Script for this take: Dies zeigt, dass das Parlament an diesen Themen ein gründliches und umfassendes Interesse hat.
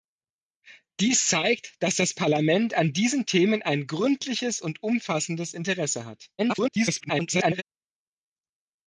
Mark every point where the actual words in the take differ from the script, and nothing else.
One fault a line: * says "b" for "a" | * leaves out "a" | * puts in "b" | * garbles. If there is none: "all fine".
* garbles